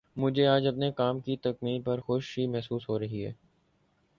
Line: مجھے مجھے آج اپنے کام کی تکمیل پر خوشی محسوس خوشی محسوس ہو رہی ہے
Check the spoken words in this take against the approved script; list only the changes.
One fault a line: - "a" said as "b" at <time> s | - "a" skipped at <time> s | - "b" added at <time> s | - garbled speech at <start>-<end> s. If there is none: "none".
- "مجھے" skipped at 0.5 s
- "خوشی محسوس" skipped at 2.9 s